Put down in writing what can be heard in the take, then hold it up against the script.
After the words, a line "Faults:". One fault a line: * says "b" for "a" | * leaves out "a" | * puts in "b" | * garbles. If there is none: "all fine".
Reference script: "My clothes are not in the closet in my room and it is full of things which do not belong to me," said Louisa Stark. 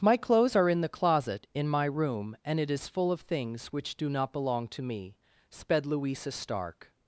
"My clothes are in the closet in my room and it is full of things which do not belong to me," sped Louisa Stark.
Faults:
* leaves out "not"
* says "sped" for "said"